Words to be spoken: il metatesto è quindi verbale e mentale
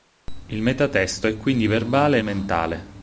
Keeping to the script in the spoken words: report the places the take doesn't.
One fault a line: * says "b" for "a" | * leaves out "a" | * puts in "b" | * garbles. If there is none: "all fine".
all fine